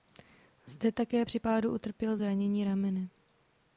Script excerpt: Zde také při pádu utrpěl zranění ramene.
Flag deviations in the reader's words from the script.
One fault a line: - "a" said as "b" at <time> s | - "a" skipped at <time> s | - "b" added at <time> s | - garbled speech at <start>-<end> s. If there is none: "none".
none